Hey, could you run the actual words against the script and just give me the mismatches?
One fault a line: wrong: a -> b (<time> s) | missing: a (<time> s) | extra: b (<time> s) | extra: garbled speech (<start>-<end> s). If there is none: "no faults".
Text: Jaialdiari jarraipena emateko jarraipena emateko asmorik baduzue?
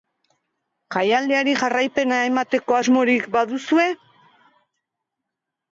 missing: jarraipena emateko (2.8 s)